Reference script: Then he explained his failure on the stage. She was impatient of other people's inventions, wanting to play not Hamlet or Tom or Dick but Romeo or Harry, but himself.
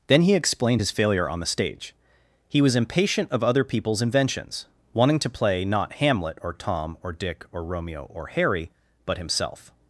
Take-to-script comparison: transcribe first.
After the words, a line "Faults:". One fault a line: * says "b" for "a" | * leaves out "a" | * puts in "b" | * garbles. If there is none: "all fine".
Then he explained his failure on the stage. He was impatient of other people's inventions, wanting to play not Hamlet or Tom or Dick or Romeo or Harry, but himself.
Faults:
* says "He" for "She"
* says "or" for "but"